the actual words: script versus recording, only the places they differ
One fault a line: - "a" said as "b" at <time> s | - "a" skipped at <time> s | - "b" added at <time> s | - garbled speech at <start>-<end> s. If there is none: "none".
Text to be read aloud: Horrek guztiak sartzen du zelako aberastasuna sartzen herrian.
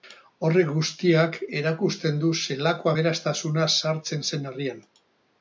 - "sartzen" said as "erakusten" at 1.6 s
- "zen" added at 4.3 s